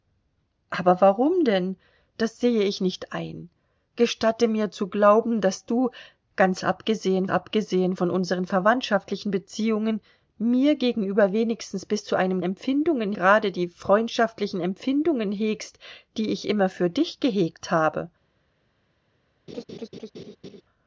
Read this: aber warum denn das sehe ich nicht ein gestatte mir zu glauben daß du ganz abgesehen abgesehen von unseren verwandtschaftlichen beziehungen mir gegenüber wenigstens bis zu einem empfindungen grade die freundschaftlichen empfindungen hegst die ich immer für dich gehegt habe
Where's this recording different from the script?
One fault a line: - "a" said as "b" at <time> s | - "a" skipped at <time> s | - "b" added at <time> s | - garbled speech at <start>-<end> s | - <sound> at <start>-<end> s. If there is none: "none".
- laugh at 19.5-20.6 s